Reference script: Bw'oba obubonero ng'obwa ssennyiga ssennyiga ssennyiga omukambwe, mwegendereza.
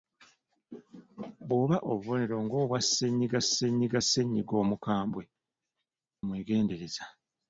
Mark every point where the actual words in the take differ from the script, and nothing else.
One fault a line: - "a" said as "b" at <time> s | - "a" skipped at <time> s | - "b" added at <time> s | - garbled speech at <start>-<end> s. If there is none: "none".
none